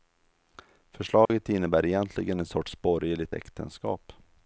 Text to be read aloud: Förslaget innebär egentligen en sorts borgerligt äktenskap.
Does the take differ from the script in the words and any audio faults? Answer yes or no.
yes